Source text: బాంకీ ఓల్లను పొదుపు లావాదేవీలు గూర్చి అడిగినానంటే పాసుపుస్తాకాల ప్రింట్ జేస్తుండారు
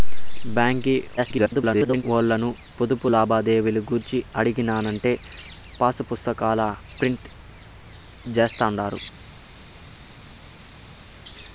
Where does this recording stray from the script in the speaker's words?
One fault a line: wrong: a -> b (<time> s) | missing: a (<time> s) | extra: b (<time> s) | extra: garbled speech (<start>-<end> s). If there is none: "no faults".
extra: garbled speech (1.2-2.0 s)